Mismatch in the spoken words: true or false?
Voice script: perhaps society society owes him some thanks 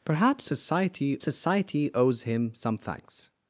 false